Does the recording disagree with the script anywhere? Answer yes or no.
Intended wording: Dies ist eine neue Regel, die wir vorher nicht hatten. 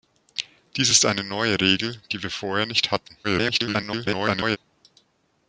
yes